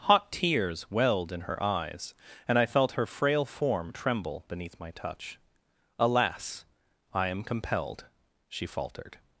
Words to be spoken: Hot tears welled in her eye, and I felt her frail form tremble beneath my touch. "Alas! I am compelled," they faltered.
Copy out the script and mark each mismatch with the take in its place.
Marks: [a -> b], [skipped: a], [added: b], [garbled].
Hot tears welled in her [eye, -> eyes] and I felt her frail form tremble beneath my touch. "Alas! I am compelled," [they -> she] faltered.